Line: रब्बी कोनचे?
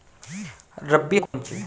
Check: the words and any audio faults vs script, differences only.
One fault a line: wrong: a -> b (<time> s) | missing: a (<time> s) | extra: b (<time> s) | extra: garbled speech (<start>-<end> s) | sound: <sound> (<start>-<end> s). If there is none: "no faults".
sound: dropout (1.3-1.3 s)